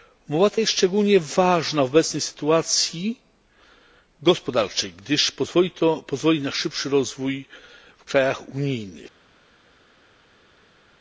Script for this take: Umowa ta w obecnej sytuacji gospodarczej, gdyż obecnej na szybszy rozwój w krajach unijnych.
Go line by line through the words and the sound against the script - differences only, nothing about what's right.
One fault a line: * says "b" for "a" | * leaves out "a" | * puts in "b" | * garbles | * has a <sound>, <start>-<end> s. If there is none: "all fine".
* puts in "jest szczególnie ważna"
* says "pozwoli" for "obecnej"